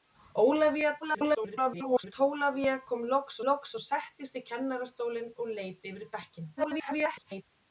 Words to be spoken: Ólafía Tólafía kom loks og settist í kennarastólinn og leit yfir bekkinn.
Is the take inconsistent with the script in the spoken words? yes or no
yes